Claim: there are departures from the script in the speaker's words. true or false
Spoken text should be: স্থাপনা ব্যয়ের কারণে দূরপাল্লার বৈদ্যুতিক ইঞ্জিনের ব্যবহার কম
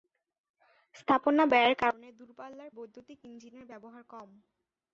false